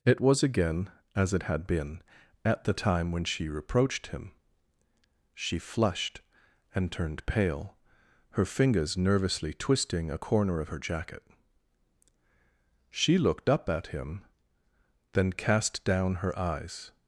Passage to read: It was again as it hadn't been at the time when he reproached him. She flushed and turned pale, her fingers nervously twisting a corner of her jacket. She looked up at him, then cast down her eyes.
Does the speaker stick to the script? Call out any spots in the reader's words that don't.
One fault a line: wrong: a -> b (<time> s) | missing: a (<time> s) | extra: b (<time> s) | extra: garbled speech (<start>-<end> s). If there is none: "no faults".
wrong: hadn't -> had (1.4 s)
wrong: he -> she (3.2 s)